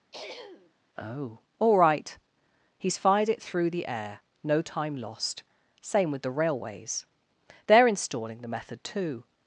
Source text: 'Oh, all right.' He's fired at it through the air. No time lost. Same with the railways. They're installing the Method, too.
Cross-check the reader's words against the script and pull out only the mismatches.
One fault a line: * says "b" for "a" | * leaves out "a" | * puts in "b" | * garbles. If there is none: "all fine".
* leaves out "at"